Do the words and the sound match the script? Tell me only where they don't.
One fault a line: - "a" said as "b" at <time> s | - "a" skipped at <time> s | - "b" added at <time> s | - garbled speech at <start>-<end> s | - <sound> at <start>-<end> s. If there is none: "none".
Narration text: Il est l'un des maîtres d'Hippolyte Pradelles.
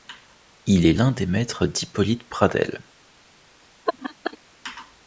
- laugh at 3.9-4.4 s